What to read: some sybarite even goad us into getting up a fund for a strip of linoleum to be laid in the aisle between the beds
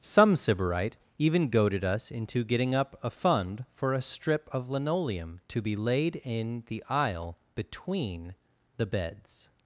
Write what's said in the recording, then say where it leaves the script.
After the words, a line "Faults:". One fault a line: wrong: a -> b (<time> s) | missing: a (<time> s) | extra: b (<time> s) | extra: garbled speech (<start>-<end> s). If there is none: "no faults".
some sybarite even goaded us into getting up a fund for a strip of linoleum to be laid in the aisle between the beds
Faults:
wrong: goad -> goaded (1.5 s)